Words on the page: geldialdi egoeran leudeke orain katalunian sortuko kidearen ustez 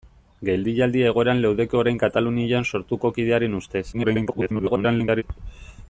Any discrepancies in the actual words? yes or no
yes